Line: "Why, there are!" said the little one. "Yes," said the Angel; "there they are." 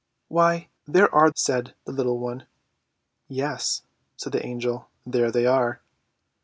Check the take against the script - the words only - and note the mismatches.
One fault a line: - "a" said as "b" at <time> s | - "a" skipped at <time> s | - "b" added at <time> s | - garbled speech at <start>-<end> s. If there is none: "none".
none